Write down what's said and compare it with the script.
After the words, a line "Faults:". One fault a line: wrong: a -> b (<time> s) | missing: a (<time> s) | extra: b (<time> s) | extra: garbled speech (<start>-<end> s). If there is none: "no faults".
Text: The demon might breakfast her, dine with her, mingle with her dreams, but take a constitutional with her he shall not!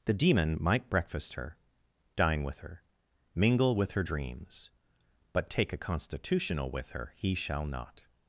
The demon might breakfast her, dine with her, mingle with her dreams, but take a constitutional with her he shall not!
Faults:
no faults